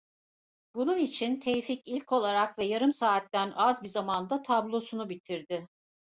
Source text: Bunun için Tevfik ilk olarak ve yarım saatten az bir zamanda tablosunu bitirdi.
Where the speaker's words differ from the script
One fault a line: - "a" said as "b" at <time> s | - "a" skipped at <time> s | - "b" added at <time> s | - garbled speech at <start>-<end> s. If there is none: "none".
none